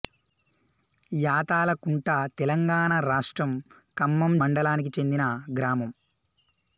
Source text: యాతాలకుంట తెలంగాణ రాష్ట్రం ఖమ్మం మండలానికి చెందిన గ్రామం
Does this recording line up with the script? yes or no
yes